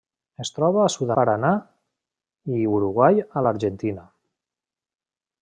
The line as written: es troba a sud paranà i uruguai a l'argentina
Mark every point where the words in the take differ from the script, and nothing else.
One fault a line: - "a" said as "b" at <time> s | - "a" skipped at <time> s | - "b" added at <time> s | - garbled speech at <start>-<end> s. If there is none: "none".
none